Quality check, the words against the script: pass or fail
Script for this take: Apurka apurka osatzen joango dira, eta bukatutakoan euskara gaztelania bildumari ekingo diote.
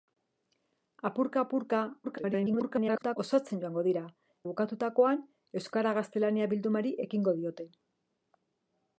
fail